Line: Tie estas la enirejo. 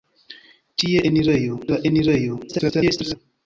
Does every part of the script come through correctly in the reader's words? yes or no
no